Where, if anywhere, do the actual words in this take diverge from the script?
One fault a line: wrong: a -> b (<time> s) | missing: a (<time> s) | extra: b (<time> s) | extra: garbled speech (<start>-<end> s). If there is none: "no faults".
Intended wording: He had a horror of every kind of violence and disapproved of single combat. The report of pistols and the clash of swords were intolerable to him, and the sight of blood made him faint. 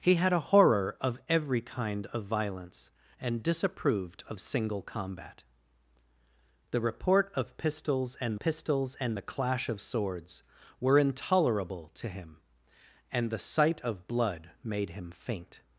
extra: pistols and (8.4 s)